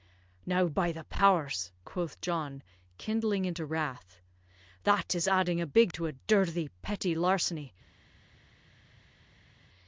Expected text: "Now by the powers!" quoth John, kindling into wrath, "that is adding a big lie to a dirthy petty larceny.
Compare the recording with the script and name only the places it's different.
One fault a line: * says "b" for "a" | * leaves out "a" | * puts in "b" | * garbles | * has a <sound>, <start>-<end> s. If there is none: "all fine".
* leaves out "lie"